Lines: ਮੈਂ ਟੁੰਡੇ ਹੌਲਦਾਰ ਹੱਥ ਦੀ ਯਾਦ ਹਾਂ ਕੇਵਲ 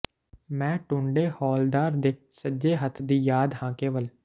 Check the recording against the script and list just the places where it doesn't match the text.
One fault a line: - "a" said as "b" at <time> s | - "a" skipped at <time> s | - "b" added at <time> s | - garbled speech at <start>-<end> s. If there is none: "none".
- "ਦੇ ਸੱਜੇ" added at 2.0 s